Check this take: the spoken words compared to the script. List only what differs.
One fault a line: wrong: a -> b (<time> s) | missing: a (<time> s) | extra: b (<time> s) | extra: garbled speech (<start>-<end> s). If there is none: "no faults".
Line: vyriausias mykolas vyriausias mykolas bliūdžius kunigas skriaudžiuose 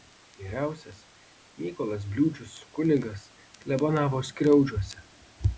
missing: vyriausias mykolas (2.1 s)
extra: klebonavo (3.6 s)